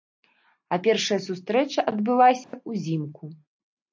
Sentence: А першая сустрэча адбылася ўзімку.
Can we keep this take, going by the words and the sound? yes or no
no